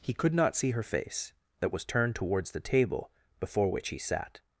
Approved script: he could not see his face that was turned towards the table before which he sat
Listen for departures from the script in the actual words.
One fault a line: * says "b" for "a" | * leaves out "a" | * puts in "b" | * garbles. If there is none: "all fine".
* says "her" for "his"